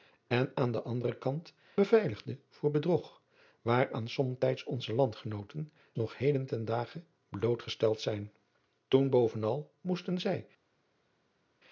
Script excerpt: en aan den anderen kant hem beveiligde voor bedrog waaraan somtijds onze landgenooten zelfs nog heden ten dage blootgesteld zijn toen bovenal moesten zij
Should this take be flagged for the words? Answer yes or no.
yes